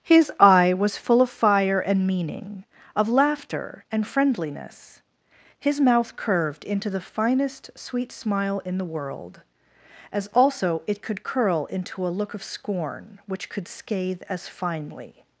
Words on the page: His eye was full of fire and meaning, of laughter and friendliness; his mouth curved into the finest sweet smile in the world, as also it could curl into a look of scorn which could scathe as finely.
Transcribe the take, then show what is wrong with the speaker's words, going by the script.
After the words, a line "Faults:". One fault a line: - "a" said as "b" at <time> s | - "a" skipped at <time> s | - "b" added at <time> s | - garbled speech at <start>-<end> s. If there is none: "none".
His eye was full of fire and meaning, of laughter and friendliness; his mouth curved into the finest sweet smile in the world, as also it could curl into a look of scorn which could scathe as finely.
Faults:
none